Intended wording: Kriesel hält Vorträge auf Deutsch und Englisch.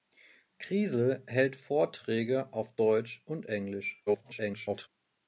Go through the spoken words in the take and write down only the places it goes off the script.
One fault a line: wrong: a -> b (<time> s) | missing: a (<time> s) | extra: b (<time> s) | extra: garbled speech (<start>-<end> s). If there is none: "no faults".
extra: garbled speech (4.1-4.9 s)